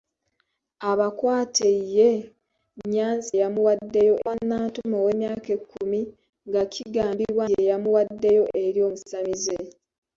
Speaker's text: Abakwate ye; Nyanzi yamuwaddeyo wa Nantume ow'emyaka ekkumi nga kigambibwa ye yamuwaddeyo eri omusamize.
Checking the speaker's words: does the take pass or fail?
pass